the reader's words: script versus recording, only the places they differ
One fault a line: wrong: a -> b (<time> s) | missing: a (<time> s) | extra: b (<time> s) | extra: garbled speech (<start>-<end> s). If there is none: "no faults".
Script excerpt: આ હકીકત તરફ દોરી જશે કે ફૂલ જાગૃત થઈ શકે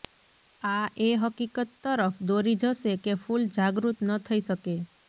extra: એ (1.0 s)
extra: ન (4.0 s)